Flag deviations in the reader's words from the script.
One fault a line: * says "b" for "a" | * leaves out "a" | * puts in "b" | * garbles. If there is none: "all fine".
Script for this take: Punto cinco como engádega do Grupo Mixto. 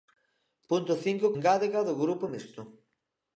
* leaves out "como"